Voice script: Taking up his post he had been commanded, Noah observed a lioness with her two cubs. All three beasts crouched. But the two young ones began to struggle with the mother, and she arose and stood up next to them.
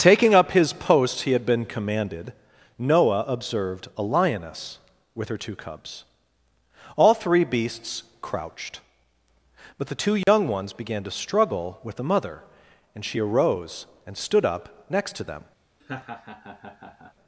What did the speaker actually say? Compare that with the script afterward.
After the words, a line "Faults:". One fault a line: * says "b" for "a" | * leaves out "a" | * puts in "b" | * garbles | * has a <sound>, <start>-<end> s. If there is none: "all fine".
Taking up his post he had been commanded, Noah observed a lioness with her two cubs. All three beasts crouched. But the two young ones began to struggle with the mother, and she arose and stood up next to them.
Faults:
* has a dropout, 10.2-10.3 s
* has a laugh, 15.8-17.1 s